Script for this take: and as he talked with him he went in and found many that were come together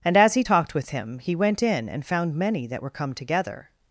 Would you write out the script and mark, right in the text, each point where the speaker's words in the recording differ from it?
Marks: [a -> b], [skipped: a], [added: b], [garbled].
and as he talked with him he went in and found many that were come together